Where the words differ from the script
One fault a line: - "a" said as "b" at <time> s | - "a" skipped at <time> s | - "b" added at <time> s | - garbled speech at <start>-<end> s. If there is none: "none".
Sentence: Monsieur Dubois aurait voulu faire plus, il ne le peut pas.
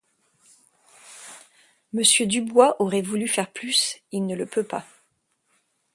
none